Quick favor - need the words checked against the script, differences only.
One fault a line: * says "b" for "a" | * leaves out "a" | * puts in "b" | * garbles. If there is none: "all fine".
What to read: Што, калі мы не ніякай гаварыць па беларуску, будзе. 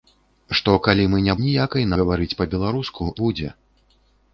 all fine